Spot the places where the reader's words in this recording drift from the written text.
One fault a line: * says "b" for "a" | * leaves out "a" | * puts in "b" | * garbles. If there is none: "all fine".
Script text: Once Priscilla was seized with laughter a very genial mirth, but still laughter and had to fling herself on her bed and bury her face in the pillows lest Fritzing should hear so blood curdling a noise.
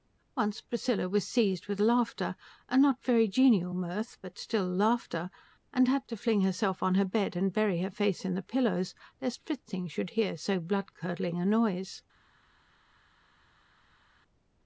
* puts in "not"